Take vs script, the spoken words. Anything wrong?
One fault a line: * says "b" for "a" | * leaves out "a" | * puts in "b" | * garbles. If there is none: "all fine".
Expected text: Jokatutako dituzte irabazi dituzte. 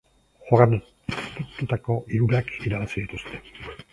* says "hirurak" for "dituzte"